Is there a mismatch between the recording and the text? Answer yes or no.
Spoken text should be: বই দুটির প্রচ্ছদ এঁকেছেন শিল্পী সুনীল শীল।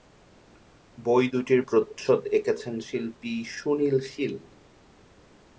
no